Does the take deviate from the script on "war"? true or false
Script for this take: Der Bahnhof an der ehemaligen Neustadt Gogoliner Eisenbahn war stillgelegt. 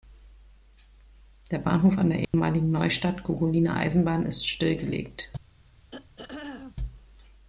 true